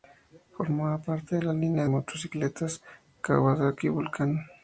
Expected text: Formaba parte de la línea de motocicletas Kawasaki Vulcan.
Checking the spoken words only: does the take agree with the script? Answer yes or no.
no